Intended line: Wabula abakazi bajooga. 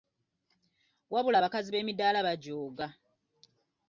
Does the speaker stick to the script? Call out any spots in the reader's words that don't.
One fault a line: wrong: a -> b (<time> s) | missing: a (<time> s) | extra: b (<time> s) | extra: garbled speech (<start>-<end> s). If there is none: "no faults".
extra: b'emidaala (1.7 s)